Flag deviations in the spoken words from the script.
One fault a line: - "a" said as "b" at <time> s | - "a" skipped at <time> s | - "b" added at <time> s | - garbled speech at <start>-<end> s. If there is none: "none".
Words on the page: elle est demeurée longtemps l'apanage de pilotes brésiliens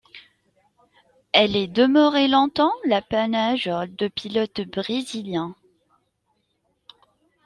none